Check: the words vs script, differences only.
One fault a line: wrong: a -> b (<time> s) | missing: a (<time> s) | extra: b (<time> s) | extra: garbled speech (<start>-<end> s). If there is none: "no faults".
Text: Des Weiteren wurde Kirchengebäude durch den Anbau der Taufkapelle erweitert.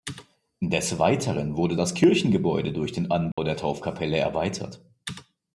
extra: das (1.8 s)